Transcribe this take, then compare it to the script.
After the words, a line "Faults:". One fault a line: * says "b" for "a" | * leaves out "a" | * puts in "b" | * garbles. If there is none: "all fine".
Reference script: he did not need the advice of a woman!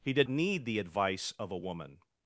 he did need the advice of a woman!
Faults:
* leaves out "not"